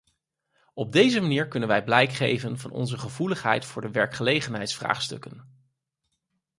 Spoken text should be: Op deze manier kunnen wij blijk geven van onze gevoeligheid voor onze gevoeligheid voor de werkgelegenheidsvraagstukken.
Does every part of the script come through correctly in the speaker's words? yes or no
no